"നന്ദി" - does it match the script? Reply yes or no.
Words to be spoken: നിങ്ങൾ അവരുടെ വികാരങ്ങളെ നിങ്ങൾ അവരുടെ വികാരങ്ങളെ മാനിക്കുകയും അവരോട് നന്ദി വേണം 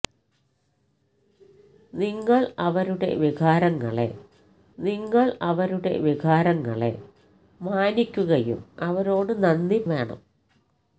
yes